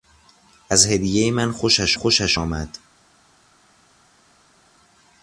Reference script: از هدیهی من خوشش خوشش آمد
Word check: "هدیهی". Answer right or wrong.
right